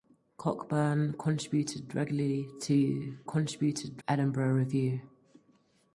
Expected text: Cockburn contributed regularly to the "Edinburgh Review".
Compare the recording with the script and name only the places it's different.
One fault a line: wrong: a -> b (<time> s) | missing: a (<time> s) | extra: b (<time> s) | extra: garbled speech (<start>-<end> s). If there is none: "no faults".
wrong: the -> contributed (3.2 s)